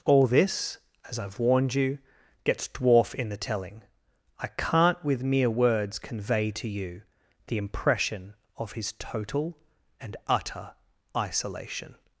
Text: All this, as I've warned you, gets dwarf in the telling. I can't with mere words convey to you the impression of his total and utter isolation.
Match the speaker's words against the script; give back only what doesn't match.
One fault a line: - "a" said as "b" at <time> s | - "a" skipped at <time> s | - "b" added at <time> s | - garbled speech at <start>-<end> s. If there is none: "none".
none